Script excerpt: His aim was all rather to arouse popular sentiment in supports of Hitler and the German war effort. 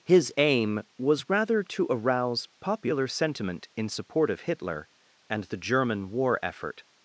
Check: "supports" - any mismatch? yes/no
yes